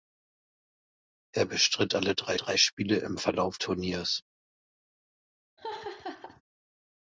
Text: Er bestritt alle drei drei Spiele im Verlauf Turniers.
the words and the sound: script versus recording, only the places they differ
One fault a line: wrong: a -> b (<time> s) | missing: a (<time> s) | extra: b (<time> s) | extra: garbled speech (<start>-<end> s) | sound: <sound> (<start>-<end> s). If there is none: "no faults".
sound: laugh (5.6-6.4 s)